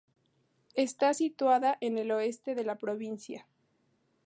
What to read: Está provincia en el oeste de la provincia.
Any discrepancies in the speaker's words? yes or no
yes